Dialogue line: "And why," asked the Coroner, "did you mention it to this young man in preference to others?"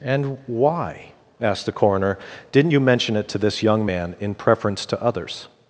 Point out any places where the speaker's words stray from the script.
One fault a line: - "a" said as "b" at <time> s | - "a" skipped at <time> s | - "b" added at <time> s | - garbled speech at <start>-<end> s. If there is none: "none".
- "did" said as "didn't" at 2.5 s